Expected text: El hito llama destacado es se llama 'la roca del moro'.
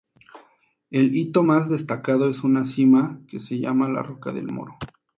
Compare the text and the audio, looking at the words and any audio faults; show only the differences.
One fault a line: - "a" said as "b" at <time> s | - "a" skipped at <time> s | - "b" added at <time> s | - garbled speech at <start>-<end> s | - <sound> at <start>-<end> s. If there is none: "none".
- "llama" said as "más" at 1.4 s
- "una cima que" added at 2.4 s